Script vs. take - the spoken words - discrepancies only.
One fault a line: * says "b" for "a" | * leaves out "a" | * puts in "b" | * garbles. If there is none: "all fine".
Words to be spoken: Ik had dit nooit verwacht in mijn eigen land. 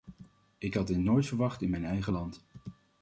all fine